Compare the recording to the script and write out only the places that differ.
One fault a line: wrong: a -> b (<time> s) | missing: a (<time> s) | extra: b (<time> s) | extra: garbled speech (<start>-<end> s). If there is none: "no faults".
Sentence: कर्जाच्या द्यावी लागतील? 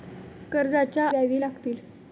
no faults